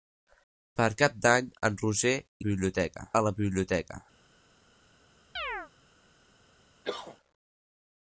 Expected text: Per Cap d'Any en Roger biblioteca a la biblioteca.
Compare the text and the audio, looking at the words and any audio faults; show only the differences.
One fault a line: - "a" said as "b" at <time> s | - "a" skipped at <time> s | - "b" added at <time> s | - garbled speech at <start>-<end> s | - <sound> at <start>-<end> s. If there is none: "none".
- chirp at 5.4-5.7 s
- cough at 6.8-7.2 s